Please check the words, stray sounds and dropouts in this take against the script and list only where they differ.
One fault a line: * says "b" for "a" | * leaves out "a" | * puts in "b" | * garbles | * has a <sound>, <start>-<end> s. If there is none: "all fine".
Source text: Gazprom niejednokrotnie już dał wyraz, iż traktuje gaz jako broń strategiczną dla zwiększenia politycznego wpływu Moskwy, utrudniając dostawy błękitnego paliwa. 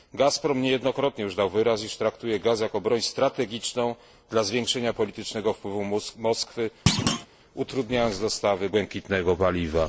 * has a thud, 6.9-7.3 s